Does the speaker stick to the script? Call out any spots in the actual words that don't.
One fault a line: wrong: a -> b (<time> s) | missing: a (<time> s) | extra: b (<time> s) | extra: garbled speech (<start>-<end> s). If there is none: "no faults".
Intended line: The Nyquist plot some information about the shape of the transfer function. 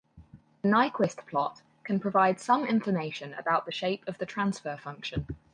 extra: can provide (1.8 s)